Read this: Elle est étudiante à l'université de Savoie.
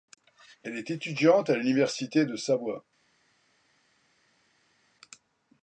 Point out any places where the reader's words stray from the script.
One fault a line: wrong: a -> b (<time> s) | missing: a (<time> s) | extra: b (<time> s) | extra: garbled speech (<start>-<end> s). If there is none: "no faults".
no faults